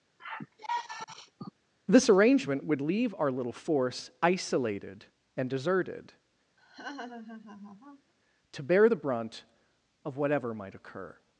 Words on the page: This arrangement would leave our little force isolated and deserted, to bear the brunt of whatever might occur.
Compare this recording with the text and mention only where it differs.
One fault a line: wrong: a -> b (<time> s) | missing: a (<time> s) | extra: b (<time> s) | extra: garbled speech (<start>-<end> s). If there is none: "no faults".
no faults